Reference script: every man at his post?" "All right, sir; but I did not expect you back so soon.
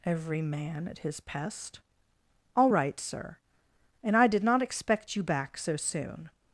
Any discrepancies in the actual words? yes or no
yes